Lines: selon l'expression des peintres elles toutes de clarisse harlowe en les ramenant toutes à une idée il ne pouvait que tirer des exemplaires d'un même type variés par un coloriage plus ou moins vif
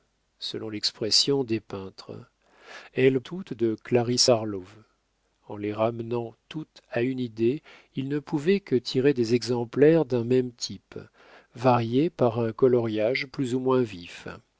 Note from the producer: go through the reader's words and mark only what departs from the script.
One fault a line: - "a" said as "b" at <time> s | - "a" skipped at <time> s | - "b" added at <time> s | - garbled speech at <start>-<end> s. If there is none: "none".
none